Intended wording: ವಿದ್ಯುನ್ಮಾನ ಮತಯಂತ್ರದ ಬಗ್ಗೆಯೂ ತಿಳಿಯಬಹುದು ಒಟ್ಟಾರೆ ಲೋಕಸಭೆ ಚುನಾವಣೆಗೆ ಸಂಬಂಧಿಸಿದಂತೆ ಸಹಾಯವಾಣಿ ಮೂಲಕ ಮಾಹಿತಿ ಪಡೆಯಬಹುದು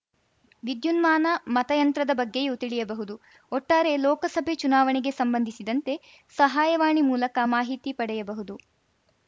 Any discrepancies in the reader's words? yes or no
no